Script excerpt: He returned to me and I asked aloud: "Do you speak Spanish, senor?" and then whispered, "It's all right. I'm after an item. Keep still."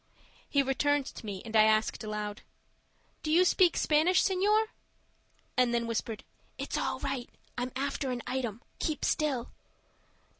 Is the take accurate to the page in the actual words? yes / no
yes